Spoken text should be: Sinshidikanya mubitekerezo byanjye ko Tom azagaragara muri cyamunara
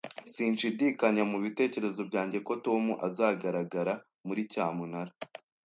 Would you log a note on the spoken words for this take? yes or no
no